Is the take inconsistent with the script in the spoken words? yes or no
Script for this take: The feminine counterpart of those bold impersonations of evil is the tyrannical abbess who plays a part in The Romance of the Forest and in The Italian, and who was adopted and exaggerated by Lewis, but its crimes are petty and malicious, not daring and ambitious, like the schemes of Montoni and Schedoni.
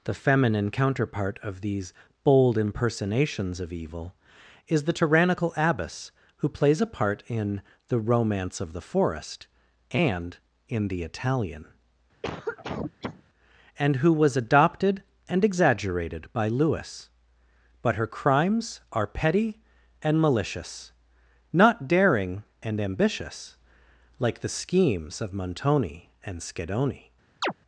yes